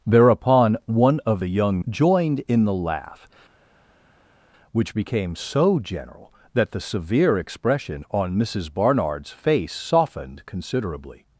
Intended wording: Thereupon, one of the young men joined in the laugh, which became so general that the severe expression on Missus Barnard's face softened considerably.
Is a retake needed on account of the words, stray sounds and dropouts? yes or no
yes